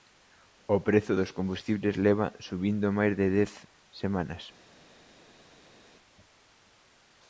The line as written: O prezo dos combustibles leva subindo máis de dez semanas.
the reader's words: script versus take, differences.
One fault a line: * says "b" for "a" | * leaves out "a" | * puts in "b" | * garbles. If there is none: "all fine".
all fine